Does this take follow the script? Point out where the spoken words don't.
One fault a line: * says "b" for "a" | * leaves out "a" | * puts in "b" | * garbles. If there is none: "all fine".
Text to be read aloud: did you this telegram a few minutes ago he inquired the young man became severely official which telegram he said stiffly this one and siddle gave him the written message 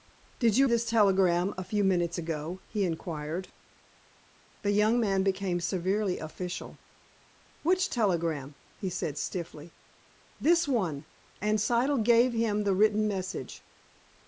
all fine